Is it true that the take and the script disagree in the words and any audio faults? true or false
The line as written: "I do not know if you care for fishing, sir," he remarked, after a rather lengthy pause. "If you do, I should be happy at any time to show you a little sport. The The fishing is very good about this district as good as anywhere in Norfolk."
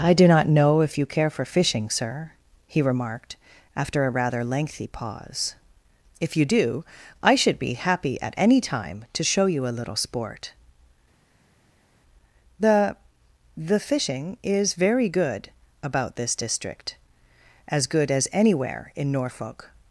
false